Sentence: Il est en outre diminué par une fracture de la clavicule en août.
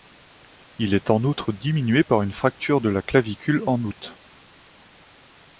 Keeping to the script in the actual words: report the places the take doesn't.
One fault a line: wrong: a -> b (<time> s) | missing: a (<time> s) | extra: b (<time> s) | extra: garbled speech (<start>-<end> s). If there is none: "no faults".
no faults